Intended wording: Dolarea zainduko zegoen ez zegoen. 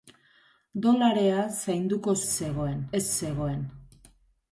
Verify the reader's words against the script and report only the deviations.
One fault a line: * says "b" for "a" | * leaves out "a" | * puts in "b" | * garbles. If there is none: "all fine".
all fine